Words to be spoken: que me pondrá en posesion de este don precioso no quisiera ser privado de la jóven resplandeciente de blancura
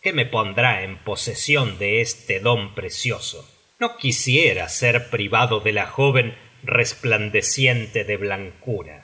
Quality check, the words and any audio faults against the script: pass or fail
pass